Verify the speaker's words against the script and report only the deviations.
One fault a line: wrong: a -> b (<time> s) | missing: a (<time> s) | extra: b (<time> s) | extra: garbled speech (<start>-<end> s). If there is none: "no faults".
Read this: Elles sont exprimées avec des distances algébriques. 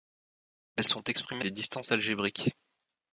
missing: avec (1.4 s)